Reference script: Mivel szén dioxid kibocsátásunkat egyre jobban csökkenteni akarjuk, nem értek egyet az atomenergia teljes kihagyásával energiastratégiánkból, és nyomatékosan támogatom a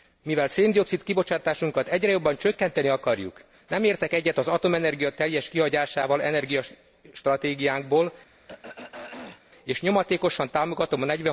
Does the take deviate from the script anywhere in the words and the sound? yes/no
yes